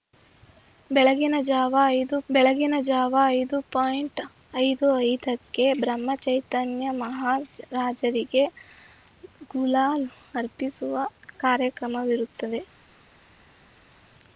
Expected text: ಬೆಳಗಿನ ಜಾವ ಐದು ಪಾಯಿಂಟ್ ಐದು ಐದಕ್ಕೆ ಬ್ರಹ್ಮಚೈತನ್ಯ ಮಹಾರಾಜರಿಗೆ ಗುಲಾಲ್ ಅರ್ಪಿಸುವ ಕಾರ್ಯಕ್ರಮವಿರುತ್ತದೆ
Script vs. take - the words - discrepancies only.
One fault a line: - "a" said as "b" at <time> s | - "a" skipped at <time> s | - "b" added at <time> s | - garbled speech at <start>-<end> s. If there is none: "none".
- "ಬೆಳಗಿನ ಜಾವ ಐದು" added at 2.3 s